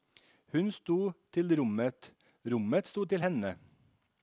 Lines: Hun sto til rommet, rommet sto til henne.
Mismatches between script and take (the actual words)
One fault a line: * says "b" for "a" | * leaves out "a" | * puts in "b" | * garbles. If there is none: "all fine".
all fine